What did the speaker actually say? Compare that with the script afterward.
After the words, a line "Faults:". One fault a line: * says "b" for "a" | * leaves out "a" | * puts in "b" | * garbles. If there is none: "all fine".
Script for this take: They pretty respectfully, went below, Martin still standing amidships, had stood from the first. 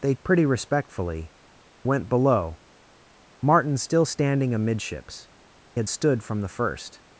They pretty respectfully, went below, Martin still standing amidships, had stood from the first.
Faults:
all fine